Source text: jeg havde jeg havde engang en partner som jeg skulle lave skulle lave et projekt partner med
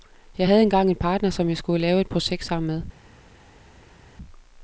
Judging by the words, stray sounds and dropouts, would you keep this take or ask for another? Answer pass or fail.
fail